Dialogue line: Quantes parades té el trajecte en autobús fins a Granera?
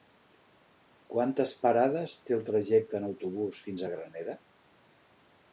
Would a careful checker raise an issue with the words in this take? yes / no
no